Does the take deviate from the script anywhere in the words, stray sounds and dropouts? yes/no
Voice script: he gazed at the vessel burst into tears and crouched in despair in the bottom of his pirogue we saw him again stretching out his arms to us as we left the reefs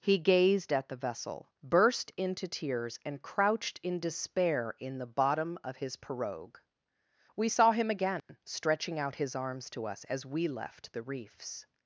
yes